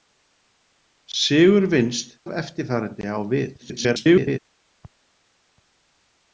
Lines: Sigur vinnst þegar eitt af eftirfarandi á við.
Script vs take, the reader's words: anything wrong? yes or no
yes